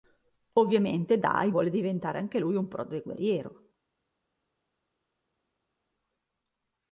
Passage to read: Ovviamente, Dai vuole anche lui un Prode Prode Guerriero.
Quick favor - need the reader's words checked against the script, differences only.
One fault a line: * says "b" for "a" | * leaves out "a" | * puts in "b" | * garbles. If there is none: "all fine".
* puts in "diventare"
* leaves out "Prode"